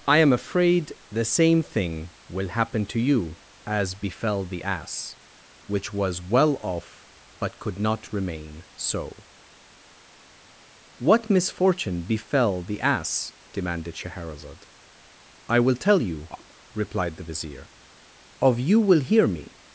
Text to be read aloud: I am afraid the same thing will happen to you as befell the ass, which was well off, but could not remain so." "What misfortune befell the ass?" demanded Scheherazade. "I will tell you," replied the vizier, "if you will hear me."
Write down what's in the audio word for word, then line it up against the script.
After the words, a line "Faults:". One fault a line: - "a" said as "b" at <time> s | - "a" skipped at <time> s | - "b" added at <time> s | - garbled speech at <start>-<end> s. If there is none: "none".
I am afraid the same thing will happen to you as befell the ass, which was well off, but could not remain so." "What misfortune befell the ass?" demanded Scheherazade. "I will tell you," replied the vizier, "of you will hear me."
Faults:
- "if" said as "of" at 18.4 s